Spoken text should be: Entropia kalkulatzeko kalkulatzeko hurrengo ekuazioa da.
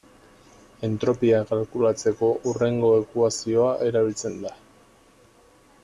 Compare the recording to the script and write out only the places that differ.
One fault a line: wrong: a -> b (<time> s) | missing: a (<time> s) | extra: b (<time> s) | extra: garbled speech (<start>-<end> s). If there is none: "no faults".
missing: kalkulatzeko (2.3 s)
extra: erabiltzen (3.9 s)